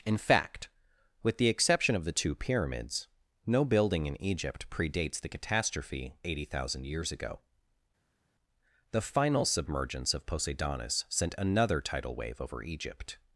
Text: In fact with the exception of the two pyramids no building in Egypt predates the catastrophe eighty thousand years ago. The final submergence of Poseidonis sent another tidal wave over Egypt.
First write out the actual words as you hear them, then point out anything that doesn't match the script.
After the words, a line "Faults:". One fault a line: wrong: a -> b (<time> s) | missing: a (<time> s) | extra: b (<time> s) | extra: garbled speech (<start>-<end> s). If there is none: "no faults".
In fact with the exception of the two pyramids no building in Egypt predates the catastrophe eighty thousand years ago. The final submergence of Poseidonis sent another tidal wave over Egypt.
Faults:
no faults